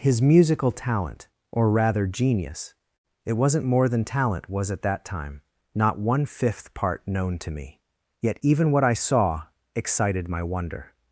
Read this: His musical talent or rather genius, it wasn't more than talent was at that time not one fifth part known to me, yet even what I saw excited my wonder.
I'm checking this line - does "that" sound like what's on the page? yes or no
yes